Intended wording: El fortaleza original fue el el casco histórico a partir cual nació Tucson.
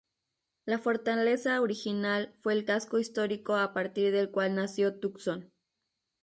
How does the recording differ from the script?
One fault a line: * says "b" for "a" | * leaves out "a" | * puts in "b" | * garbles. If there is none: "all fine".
* says "La" for "El"
* leaves out "el"
* puts in "del"